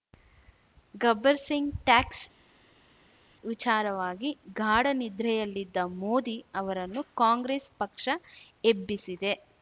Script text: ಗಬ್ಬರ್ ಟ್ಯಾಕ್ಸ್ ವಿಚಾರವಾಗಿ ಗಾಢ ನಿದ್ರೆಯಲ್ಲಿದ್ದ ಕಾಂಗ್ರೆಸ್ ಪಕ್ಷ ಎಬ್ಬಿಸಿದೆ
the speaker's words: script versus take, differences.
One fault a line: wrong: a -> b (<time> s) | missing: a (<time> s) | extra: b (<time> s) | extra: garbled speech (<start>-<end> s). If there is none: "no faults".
extra: ಸಿಂಗ್ (1.4 s)
extra: ಮೋದಿ ಅವರನ್ನು (6.0 s)